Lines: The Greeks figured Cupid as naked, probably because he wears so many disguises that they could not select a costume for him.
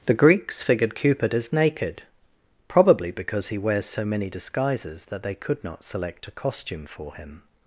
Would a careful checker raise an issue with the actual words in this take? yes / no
no